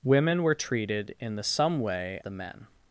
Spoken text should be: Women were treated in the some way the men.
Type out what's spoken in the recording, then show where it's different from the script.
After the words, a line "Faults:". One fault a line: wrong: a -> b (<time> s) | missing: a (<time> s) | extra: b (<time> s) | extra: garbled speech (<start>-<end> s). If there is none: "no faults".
Women were treated in the some way the men.
Faults:
no faults